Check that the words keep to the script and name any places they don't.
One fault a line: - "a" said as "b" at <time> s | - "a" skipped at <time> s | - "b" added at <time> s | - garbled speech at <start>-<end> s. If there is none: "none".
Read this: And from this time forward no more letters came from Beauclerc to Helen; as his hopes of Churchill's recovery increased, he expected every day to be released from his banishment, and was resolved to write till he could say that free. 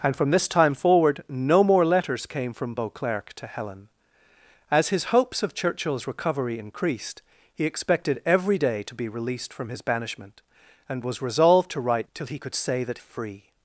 none